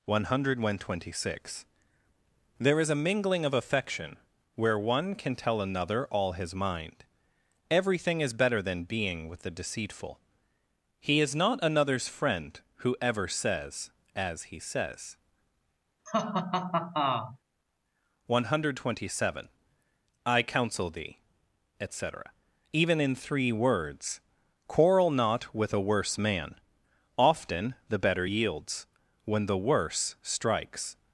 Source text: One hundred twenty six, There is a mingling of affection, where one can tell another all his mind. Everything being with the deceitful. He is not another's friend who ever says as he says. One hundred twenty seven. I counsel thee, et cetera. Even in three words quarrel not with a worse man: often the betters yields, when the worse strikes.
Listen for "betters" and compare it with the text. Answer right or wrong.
wrong